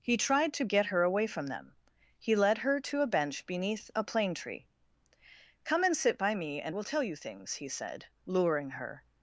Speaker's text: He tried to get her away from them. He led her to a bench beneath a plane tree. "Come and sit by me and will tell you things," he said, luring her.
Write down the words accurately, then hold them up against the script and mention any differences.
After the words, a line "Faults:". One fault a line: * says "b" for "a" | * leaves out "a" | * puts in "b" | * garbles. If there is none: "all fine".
He tried to get her away from them. He led her to a bench beneath a plane tree. "Come and sit by me and will tell you things," he said, luring her.
Faults:
all fine